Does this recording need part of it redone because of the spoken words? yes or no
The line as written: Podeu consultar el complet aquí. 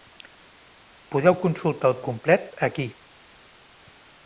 no